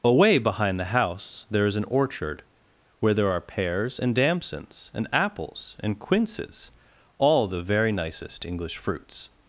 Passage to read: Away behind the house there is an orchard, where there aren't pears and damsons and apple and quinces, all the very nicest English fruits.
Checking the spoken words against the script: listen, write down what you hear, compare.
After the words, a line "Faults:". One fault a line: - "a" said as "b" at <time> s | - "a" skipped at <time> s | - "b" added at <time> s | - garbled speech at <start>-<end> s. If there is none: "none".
Away behind the house there is an orchard, where there are pears and damsons and apples and quinces, all the very nicest English fruits.
Faults:
- "aren't" said as "are" at 3.3 s
- "apple" said as "apples" at 5.1 s